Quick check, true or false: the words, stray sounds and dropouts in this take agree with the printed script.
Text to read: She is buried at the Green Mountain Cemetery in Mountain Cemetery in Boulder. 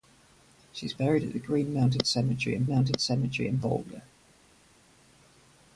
true